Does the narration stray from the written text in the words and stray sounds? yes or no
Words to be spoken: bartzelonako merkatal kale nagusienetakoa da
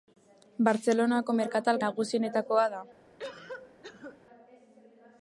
yes